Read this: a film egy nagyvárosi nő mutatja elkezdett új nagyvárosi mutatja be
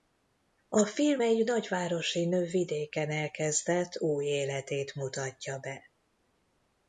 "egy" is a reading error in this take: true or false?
false